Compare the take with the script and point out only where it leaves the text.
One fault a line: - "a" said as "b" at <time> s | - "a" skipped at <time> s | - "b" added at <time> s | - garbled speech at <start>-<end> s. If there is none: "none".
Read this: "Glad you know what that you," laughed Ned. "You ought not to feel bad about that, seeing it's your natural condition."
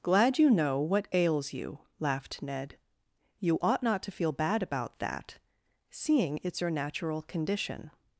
- "that" said as "ails" at 1.1 s